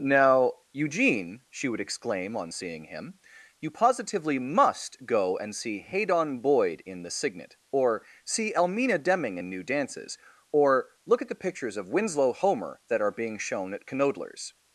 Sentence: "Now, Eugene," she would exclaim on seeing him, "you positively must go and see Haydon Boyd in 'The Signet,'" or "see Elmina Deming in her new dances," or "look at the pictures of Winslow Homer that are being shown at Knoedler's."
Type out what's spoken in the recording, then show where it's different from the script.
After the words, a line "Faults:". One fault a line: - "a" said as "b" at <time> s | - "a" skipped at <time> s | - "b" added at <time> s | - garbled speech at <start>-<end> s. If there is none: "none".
"Now, Eugene," she would exclaim on seeing him, "you positively must go and see Haydon Boyd in 'The Signet,'" or "see Elmina Deming in new dances," or "look at the pictures of Winslow Homer that are being shown at Knoedler's."
Faults:
- "her" skipped at 9.5 s